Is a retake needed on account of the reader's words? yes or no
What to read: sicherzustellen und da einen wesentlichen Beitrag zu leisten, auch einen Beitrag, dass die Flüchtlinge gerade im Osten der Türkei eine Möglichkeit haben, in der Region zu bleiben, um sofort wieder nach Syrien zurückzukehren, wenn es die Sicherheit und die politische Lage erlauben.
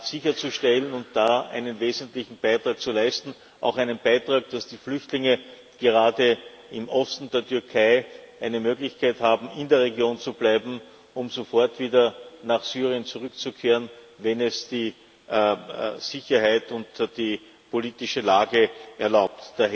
no